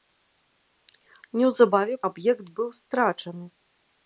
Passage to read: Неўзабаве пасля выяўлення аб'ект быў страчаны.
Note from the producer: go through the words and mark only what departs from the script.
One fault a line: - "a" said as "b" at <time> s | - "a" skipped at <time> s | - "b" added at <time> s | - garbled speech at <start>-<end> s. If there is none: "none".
- "пасля выяўлення" skipped at 1.9 s